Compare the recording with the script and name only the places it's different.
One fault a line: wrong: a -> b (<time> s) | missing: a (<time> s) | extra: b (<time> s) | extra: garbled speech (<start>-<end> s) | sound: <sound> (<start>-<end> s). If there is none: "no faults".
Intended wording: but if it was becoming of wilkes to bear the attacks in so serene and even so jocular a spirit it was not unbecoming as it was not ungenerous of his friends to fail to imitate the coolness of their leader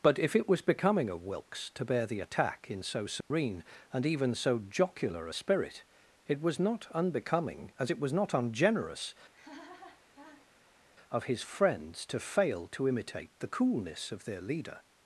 wrong: attacks -> attack (2.2 s)
sound: dropout (3.2-3.3 s)
sound: laugh (9.3-10.8 s)